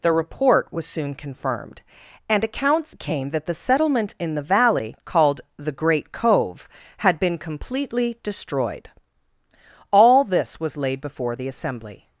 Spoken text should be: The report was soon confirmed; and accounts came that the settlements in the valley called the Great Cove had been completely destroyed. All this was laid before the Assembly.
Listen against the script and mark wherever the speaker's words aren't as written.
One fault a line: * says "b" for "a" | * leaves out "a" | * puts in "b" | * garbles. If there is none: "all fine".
* says "settlement" for "settlements"